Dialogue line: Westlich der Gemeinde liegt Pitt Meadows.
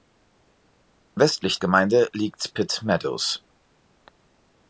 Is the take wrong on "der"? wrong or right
wrong